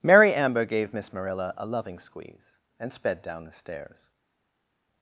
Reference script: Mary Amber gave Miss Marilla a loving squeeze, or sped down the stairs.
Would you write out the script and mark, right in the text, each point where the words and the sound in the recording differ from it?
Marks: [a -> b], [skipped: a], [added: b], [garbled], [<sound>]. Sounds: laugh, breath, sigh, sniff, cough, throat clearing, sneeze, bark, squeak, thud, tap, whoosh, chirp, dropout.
Mary Amber gave Miss Marilla a loving squeeze, [or -> and] sped down the stairs.